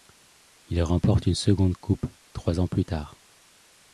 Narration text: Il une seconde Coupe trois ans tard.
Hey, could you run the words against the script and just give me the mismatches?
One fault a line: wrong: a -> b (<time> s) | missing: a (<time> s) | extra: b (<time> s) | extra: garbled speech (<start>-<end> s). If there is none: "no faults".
extra: remporte (0.8 s)
extra: plus (2.6 s)